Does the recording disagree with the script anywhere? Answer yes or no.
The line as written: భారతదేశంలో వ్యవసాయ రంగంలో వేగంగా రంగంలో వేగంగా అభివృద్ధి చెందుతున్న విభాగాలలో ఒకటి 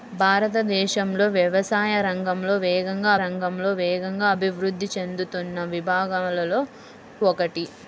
no